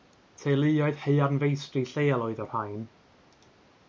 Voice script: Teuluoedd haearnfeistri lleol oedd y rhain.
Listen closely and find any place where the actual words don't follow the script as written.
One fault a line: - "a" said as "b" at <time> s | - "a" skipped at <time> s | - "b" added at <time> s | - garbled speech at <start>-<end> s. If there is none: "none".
none